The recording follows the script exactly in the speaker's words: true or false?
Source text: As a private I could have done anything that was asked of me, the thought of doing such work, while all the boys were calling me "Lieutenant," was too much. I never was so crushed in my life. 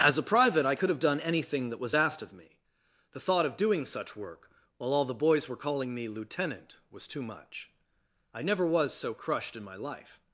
true